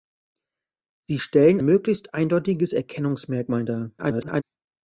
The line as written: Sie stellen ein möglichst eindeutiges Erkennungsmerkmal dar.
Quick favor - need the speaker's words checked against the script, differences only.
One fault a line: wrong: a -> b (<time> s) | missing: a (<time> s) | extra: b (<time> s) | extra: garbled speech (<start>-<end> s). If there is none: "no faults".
missing: ein (1.6 s)
extra: garbled speech (4.0-4.4 s)